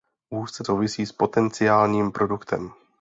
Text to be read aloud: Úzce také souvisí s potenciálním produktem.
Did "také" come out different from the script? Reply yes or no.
yes